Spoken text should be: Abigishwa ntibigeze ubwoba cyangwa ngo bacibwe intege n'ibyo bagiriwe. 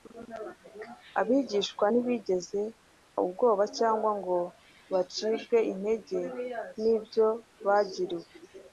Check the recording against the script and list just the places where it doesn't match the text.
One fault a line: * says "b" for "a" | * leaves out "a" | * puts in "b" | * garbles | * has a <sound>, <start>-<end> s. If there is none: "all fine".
all fine